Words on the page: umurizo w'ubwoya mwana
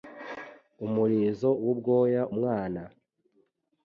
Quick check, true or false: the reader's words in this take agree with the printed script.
true